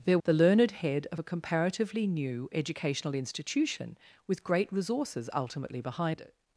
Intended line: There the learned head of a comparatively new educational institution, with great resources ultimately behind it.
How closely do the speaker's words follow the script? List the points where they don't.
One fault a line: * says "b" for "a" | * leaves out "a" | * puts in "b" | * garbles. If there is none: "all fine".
all fine